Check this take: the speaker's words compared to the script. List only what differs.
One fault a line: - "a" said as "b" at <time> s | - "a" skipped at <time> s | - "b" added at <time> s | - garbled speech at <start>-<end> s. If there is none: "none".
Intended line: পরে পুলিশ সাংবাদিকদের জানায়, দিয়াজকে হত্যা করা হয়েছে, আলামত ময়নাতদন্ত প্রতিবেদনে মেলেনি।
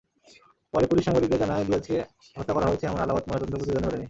- "এমন" added at 2.8 s